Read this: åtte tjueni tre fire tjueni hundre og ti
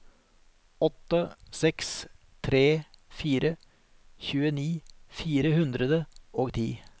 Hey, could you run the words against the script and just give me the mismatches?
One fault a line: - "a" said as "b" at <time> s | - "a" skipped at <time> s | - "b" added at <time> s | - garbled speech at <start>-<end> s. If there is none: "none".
- "tjueni" said as "seks" at 1.5 s
- "fire" added at 5.1 s